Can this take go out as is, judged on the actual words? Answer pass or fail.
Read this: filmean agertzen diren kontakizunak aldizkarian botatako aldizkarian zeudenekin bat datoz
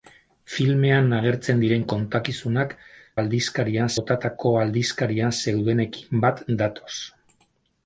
pass